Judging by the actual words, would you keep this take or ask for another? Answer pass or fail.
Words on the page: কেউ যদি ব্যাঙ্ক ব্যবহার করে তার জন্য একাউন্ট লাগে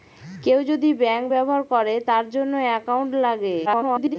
fail